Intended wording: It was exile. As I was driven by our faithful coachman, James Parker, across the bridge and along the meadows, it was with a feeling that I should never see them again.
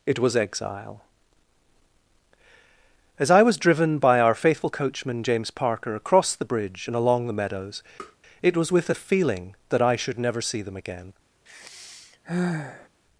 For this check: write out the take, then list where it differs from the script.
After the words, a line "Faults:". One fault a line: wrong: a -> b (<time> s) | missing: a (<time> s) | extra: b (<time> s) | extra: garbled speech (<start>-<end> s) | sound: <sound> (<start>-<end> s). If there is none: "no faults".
It was exile. As I was driven by our faithful coachman, James Parker, across the bridge and along the meadows, it was with a feeling that I should never see them again.
Faults:
sound: tap (8.0-8.2 s)
sound: sigh (11.5-12.9 s)